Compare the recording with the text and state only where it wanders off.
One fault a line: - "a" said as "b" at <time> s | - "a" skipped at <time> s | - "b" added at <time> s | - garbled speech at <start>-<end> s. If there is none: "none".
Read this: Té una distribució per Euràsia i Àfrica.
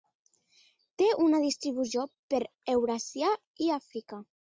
none